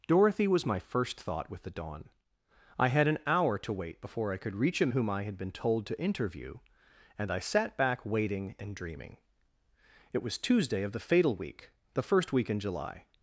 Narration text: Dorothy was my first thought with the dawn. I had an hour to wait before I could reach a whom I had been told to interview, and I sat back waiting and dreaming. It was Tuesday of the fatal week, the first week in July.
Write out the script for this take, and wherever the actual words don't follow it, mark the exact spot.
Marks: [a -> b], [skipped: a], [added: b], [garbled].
Dorothy was my first thought with the dawn. I had an hour to wait before I could reach a whom I had been told to interview, and I sat back waiting and dreaming. It was Tuesday of the fatal week, the first week in July.